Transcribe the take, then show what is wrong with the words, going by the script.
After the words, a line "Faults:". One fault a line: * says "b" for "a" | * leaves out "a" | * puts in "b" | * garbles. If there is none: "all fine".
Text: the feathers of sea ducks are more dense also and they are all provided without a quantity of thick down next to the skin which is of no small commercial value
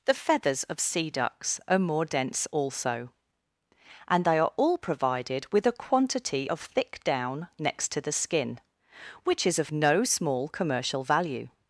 the feathers of sea ducks are more dense also and they are all provided with a quantity of thick down next to the skin which is of no small commercial value
Faults:
* says "with" for "without"